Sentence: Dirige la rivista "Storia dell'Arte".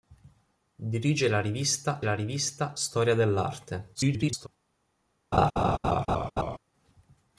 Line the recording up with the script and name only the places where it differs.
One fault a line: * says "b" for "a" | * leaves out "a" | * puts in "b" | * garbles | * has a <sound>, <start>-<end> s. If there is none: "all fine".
* puts in "la rivista"
* garbles
* has a laugh, 5.3-6.6 s